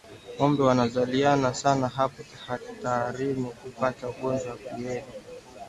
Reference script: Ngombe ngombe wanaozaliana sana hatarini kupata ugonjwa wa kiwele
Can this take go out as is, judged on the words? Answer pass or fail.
fail